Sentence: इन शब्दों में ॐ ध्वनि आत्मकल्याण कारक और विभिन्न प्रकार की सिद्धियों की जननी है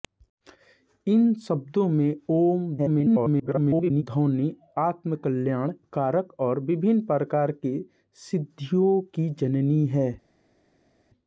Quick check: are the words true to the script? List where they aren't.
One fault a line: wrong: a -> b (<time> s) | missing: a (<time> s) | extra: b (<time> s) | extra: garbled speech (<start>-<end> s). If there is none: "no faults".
extra: garbled speech (2.8-4.0 s)